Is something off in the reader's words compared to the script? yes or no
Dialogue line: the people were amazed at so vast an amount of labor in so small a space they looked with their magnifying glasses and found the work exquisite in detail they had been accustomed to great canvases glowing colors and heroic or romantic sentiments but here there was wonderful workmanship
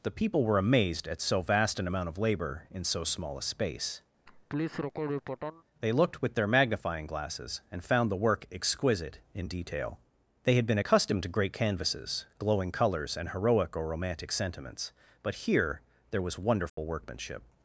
no